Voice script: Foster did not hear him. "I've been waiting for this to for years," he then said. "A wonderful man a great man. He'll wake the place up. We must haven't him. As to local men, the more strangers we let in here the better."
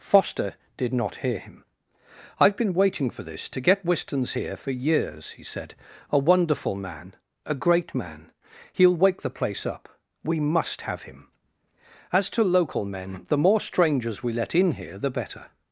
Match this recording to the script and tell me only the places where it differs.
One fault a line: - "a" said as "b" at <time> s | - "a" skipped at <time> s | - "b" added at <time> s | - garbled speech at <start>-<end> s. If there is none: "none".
- "get Wistons here" added at 3.6 s
- "then" skipped at 5.4 s
- "haven't" said as "have" at 10.8 s